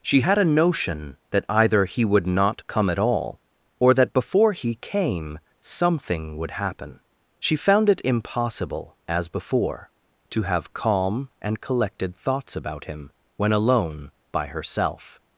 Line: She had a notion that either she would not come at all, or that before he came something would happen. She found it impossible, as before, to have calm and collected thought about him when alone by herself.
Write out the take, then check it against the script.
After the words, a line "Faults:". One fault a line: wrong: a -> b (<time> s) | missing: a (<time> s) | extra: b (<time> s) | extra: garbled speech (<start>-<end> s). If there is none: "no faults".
She had a notion that either he would not come at all, or that before he came something would happen. She found it impossible, as before, to have calm and collected thoughts about him when alone by herself.
Faults:
wrong: she -> he (1.8 s)
wrong: thought -> thoughts (12.1 s)